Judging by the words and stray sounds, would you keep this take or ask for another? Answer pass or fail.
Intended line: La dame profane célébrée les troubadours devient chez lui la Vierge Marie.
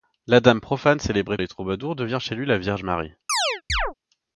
fail